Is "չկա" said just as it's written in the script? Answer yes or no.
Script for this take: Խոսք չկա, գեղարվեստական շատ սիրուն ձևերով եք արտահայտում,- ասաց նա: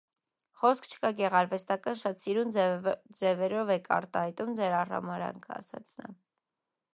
yes